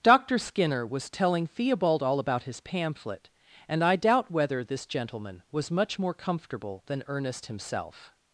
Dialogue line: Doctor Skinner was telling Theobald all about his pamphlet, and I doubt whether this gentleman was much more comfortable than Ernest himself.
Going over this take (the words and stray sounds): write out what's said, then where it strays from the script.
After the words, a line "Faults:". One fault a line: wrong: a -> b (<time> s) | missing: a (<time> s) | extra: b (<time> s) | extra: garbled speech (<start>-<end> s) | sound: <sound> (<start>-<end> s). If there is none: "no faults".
Doctor Skinner was telling Theobald all about his pamphlet, and I doubt whether this gentleman was much more comfortable than Ernest himself.
Faults:
no faults